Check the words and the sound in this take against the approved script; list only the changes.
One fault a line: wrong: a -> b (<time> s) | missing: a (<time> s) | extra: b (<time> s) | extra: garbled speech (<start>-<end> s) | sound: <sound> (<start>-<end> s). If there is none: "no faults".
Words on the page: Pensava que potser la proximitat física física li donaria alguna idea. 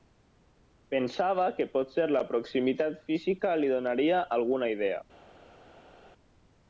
missing: física (3.5 s)